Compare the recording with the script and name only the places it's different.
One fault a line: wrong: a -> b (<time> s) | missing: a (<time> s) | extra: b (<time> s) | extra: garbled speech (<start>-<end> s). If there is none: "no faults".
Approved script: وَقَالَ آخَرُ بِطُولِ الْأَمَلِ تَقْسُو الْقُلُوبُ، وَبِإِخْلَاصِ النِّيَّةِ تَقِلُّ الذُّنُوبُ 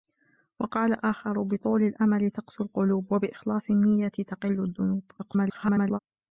extra: garbled speech (5.2-6.0 s)